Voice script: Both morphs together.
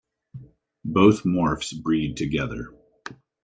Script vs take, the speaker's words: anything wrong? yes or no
yes